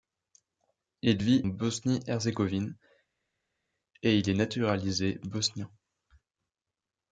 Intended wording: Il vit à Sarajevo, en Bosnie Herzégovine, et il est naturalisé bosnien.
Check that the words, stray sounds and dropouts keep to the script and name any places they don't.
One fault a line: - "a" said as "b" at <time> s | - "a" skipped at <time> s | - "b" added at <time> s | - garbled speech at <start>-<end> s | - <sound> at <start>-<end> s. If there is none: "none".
- "à Sarajevo en" skipped at 1.4 s